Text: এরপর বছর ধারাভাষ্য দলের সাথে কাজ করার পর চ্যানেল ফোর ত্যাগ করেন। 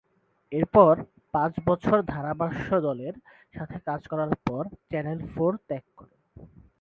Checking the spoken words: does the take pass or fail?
fail